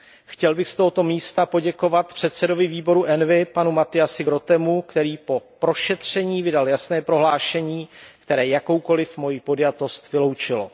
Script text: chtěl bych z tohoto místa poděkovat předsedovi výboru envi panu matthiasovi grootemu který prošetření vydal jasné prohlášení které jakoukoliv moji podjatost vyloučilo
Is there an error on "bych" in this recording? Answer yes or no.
no